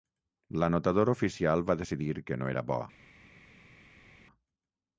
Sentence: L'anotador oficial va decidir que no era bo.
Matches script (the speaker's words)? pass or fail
pass